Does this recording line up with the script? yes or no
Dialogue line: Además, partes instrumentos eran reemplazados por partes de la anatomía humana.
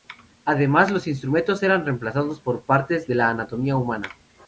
no